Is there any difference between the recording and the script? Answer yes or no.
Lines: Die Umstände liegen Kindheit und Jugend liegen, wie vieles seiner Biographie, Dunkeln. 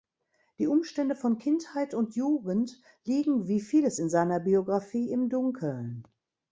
yes